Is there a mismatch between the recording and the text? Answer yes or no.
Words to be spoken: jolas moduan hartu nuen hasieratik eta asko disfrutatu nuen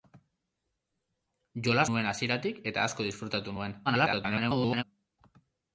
yes